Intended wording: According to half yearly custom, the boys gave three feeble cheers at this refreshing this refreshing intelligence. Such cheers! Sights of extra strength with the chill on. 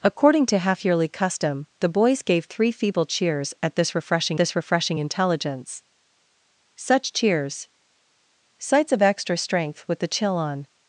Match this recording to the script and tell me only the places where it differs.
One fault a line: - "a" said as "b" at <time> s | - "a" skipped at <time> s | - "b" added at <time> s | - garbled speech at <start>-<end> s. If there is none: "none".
none